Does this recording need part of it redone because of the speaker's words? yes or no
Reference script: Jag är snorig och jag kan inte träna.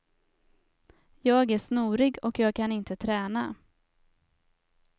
no